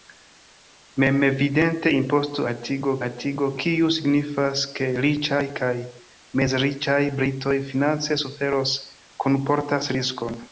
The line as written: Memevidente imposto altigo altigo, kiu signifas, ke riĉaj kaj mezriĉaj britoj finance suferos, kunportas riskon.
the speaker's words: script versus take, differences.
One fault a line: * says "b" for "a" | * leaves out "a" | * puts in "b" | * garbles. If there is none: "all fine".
all fine